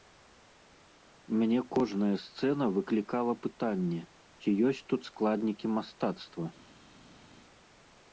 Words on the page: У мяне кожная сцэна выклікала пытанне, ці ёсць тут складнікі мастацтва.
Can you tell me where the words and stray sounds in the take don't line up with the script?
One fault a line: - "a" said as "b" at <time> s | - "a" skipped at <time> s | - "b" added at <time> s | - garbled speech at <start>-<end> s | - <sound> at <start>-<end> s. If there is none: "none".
none